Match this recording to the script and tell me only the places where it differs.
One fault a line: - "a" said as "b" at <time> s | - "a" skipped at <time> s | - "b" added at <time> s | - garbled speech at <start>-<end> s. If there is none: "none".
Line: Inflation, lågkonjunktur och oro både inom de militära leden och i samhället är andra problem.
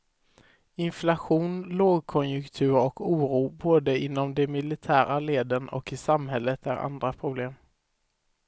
none